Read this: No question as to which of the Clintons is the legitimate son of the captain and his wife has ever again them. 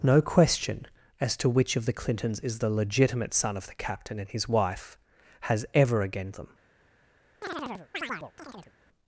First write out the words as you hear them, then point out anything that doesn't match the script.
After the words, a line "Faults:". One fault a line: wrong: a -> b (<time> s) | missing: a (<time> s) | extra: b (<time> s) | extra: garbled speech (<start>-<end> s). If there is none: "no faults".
No question as to which of the Clintons is the legitimate son of the captain and his wife has ever again them.
Faults:
no faults